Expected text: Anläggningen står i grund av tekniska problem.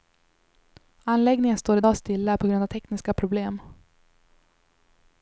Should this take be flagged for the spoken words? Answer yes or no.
yes